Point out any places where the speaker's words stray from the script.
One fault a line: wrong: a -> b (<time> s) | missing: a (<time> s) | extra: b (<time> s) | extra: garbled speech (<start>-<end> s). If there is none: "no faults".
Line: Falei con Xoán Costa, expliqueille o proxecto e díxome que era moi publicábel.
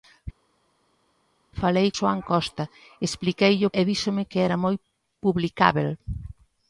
missing: con (1.9 s)
missing: proxecto (3.8 s)